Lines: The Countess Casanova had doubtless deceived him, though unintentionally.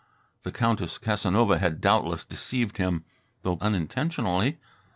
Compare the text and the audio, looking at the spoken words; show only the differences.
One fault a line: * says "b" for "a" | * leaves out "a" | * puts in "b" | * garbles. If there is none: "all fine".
all fine